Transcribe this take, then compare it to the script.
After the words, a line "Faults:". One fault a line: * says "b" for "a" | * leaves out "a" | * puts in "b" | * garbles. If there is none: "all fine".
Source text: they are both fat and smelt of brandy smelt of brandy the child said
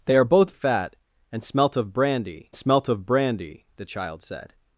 they are both fat and smelt of brandy smelt of brandy the child said
Faults:
all fine